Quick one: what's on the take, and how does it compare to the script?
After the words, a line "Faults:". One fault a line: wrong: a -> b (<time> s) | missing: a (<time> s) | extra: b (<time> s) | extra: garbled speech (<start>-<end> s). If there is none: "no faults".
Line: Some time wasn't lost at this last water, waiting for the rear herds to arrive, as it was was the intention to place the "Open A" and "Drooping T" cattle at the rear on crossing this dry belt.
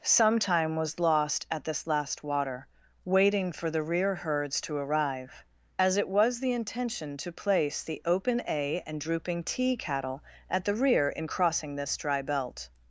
Some time was lost at this last water, waiting for the rear herds to arrive, as it was the intention to place the "Open A" and "Drooping T" cattle at the rear in crossing this dry belt.
Faults:
wrong: wasn't -> was (0.8 s)
missing: was (6.4 s)
wrong: on -> in (11.1 s)